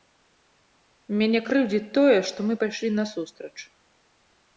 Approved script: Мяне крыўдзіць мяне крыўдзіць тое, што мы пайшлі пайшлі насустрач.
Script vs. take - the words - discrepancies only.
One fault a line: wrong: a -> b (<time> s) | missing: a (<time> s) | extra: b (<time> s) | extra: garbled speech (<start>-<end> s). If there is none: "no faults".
missing: мяне крыўдзіць (1.9 s)
missing: пайшлі (2.9 s)